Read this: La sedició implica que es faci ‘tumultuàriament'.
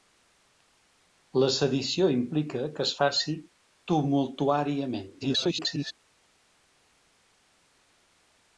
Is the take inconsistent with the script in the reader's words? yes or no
yes